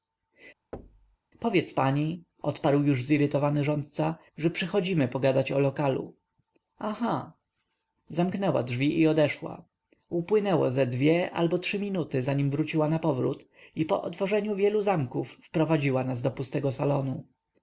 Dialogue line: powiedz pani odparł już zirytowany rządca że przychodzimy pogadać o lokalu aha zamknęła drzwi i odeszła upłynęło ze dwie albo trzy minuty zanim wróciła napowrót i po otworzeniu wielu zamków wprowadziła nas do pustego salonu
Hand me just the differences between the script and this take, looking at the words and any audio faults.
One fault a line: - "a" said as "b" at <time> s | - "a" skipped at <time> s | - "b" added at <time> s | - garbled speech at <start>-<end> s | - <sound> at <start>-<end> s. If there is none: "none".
- thud at 0.7-1.2 s